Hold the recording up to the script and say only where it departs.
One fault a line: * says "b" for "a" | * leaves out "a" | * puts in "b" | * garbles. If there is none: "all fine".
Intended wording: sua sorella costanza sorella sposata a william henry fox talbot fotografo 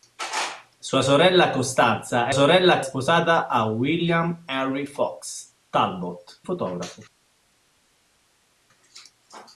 all fine